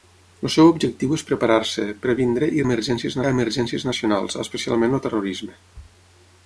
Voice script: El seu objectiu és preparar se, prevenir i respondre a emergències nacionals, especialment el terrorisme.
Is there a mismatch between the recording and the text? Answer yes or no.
yes